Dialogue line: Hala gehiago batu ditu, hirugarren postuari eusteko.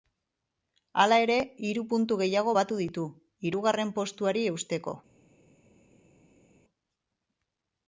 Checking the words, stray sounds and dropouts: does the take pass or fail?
fail